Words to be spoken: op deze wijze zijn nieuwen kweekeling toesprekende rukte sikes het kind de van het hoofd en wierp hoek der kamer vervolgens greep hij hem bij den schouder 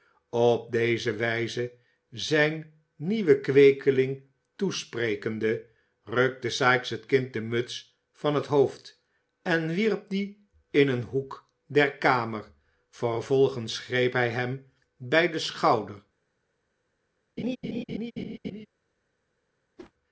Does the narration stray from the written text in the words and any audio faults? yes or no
yes